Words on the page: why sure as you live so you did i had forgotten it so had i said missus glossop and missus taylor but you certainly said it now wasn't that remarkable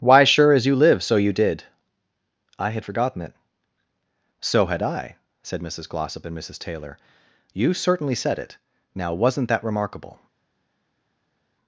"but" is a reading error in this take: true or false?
true